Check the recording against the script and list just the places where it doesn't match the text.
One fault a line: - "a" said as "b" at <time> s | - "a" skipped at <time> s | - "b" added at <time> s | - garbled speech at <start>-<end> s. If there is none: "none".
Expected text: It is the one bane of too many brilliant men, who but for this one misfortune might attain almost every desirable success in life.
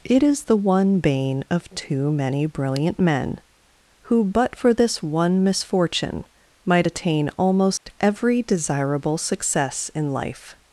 none